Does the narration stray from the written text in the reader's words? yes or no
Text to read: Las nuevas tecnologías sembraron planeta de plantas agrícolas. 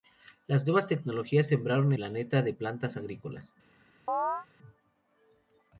no